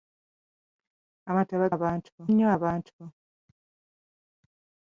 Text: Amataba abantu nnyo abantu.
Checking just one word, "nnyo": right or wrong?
right